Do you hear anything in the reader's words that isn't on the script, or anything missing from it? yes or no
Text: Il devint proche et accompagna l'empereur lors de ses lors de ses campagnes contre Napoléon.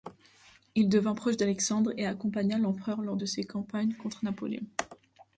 yes